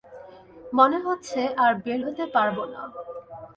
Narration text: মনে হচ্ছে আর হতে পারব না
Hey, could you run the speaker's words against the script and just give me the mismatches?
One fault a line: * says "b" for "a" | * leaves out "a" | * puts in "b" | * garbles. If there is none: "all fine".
* puts in "বের"